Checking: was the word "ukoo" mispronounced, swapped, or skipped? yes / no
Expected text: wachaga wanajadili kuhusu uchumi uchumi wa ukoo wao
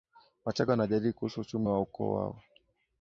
no